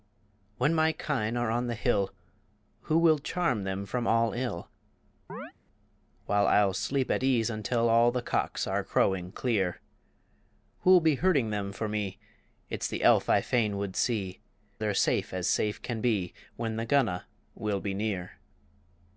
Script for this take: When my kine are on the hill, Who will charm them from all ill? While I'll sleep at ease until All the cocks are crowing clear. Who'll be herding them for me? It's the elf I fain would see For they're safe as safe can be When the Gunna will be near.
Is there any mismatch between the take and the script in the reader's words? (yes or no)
yes